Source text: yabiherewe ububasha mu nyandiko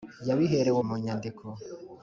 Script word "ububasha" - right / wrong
wrong